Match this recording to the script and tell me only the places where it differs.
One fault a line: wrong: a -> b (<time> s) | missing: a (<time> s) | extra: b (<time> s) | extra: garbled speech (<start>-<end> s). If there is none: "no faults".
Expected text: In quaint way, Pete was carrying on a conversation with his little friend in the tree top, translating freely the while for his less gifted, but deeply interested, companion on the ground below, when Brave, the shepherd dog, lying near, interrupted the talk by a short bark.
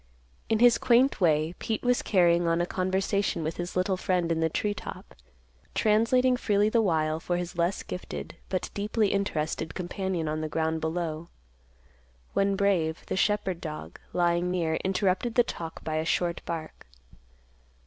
extra: his (0.6 s)